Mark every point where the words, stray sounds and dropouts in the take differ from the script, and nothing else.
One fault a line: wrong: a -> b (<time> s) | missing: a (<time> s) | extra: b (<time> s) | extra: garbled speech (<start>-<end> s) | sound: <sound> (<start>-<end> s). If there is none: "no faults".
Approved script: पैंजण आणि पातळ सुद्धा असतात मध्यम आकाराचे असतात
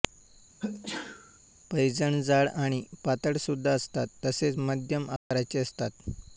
sound: sneeze (0.6-1.4 s)
extra: जाड (2.2 s)
extra: तसेच (4.3 s)
sound: dropout (5.2-5.3 s)